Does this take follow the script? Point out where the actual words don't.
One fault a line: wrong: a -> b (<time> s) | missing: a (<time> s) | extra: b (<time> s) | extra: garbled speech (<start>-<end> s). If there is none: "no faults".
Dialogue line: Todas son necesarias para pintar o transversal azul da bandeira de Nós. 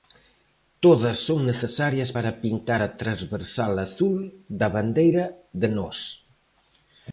wrong: o -> a (2.8 s)